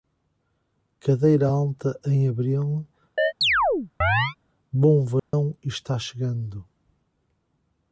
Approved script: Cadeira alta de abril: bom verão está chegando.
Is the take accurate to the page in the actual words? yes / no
no